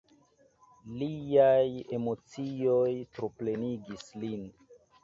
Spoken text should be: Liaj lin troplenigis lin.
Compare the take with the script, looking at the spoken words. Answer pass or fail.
fail